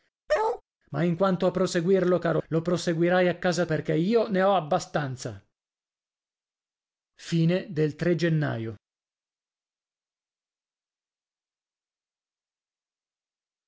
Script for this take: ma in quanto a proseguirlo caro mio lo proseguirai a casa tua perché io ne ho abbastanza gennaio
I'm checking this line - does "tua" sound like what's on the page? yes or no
no